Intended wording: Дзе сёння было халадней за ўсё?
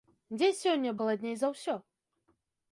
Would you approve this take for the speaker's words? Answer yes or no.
no